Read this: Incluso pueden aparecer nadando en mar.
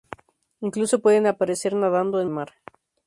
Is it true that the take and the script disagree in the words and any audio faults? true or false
false